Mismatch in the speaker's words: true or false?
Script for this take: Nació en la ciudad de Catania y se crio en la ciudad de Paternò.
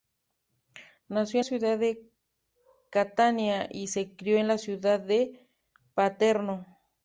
true